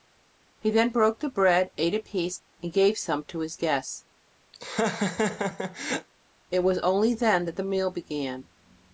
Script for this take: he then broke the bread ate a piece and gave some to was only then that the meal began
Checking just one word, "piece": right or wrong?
right